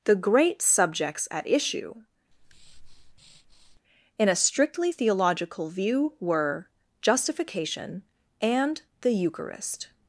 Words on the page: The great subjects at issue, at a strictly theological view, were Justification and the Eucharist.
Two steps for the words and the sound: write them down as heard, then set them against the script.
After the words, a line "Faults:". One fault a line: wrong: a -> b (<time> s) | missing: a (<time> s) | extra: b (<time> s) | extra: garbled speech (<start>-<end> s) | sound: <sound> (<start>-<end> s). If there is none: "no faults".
The great subjects at issue, in a strictly theological view, were Justification and the Eucharist.
Faults:
sound: breath (2.3-3.8 s)
wrong: at -> in (4.2 s)